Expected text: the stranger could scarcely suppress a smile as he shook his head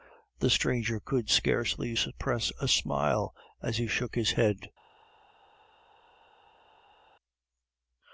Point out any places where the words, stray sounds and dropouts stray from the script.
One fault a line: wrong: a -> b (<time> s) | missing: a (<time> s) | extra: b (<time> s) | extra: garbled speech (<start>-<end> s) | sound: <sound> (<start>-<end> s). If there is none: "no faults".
no faults